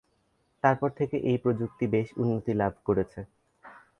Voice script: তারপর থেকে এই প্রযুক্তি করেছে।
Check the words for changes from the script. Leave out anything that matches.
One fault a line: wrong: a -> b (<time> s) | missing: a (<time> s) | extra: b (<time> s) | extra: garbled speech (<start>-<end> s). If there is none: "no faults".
extra: বেশ উন্নতি লাভ (1.9 s)